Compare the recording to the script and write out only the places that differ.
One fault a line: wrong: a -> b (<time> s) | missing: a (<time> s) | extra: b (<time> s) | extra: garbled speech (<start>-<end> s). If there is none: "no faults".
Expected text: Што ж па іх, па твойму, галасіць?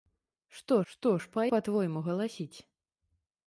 extra: што (0.9 s)
missing: іх (1.5 s)